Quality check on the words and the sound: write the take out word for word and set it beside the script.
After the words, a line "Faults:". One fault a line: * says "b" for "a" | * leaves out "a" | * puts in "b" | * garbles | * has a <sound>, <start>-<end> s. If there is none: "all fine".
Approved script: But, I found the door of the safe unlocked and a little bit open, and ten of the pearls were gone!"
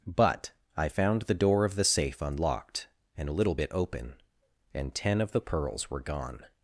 But, I found the door of the safe unlocked and a little bit open, and ten of the pearls were gone!"
Faults:
all fine